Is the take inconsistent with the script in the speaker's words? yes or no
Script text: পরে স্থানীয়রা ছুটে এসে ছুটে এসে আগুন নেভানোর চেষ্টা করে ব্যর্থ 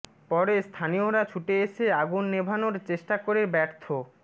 yes